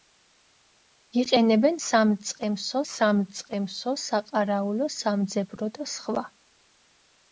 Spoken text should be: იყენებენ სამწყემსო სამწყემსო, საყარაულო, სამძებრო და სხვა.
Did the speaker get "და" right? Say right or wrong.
right